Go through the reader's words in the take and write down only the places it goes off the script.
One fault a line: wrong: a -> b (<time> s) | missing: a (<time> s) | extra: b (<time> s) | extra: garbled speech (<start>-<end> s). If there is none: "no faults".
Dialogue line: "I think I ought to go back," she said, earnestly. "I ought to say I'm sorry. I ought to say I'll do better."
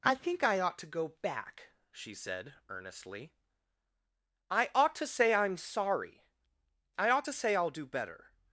no faults